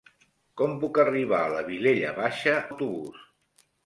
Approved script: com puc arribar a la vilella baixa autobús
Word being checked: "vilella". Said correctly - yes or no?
yes